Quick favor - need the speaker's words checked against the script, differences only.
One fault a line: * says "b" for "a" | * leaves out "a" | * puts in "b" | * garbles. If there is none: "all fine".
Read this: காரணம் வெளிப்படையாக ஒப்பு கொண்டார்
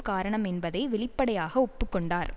* puts in "என்பதை"